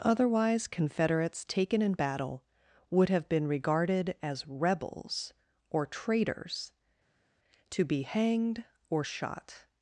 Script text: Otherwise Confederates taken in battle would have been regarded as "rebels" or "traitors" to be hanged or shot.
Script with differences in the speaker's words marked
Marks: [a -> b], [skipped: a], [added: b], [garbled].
Otherwise Confederates taken in battle would have been regarded as "rebels" or "traitors" to be hanged or shot.